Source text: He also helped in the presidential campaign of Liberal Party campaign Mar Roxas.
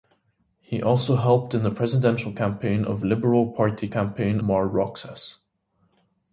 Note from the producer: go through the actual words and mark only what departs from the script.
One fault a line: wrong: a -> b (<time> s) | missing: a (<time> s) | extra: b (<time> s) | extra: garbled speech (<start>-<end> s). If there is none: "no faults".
no faults